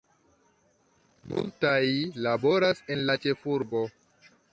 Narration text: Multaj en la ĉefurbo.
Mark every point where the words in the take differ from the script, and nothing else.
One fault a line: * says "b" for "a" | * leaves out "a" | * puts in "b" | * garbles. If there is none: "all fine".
* puts in "laboras"